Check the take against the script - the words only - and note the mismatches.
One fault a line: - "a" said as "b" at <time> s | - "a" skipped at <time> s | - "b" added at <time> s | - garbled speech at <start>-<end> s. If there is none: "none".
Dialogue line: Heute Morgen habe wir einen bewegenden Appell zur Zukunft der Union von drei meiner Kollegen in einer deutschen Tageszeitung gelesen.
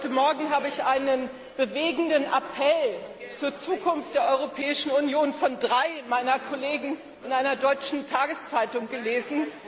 - "wir" said as "ich" at 0.7 s
- "Europäischen" added at 4.3 s